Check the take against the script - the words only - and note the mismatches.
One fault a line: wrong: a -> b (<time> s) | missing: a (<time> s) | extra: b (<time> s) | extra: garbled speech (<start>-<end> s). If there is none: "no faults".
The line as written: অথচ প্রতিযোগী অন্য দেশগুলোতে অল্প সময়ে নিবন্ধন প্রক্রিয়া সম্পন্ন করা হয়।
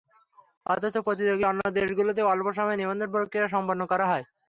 no faults